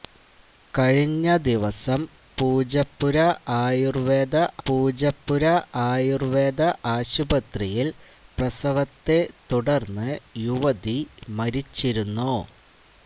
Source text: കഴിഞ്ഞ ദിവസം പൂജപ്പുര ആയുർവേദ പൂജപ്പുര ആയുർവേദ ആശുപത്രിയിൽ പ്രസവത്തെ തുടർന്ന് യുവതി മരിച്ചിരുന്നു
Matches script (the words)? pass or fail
pass